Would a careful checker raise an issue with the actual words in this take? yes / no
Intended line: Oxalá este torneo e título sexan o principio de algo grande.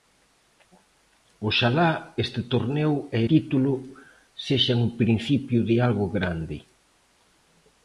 no